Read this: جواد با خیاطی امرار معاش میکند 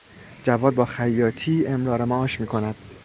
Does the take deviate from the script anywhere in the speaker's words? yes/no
no